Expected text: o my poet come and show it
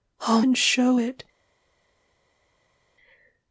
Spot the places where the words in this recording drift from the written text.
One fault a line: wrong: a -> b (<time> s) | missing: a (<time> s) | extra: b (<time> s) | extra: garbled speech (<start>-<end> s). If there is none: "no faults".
missing: my poet come (0.4 s)